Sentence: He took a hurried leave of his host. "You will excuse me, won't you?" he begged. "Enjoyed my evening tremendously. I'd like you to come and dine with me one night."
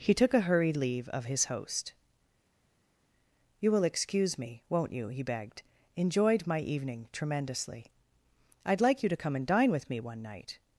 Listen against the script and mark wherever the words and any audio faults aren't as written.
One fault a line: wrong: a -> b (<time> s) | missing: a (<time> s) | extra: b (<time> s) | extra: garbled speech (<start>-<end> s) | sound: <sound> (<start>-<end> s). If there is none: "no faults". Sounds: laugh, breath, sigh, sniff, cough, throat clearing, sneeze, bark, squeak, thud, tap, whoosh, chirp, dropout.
no faults